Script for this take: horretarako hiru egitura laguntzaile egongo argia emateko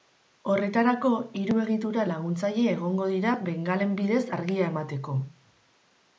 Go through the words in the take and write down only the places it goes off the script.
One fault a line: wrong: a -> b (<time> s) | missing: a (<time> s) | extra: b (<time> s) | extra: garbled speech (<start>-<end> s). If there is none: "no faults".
extra: dira bengalen bidez (3.2 s)